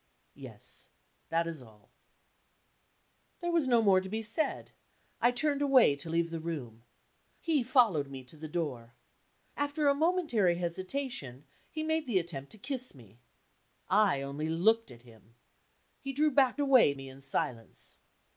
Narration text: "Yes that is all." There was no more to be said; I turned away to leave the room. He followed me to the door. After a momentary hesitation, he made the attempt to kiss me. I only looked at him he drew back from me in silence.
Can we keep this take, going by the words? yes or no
no